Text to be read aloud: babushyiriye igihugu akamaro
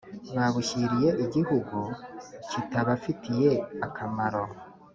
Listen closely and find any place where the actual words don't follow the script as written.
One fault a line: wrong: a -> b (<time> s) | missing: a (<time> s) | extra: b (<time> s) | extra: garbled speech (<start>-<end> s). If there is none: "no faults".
extra: kitabafitiye (2.5 s)